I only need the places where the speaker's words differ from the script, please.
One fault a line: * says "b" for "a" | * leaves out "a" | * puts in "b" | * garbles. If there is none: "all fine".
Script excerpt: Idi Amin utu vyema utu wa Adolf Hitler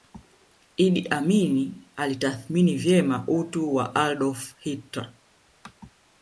* says "alitathmini" for "utu"